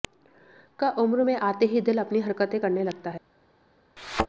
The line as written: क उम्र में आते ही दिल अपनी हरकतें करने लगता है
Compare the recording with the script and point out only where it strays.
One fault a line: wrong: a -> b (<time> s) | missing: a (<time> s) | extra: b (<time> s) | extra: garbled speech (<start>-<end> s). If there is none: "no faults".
no faults